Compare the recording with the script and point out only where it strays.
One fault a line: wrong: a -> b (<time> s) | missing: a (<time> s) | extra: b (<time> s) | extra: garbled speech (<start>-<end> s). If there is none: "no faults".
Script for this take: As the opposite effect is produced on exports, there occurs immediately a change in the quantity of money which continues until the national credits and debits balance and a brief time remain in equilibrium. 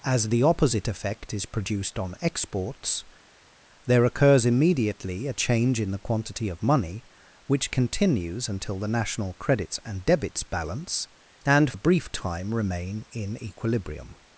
no faults